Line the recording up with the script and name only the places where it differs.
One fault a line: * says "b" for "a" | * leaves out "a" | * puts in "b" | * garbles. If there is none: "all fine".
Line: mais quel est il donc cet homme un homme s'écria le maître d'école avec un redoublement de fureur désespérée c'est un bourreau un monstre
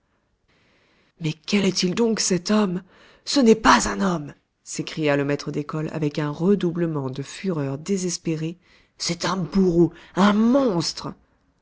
* puts in "ce n'est pas"